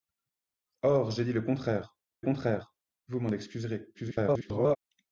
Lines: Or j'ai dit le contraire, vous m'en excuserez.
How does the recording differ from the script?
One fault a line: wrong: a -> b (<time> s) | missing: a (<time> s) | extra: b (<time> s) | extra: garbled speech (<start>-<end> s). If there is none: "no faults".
extra: contraire (2.2 s)
extra: garbled speech (3.9-4.8 s)